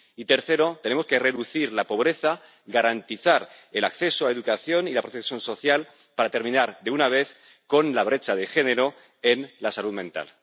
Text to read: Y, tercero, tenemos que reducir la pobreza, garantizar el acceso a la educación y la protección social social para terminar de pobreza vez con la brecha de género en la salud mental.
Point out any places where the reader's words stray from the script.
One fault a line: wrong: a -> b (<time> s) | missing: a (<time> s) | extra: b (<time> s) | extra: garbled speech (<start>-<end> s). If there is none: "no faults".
missing: social (5.9 s)
wrong: pobreza -> una (6.9 s)